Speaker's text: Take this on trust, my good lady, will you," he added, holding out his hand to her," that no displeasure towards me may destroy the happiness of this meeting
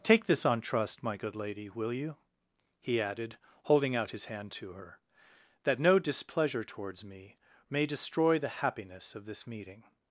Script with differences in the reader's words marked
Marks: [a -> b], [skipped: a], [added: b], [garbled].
Take this on trust, my good lady, will you," he added, holding out his hand to her," that no displeasure towards me may destroy the happiness of this meeting